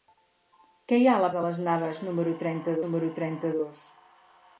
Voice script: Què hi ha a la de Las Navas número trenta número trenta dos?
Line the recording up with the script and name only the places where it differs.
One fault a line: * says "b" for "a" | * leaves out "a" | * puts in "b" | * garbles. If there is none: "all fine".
all fine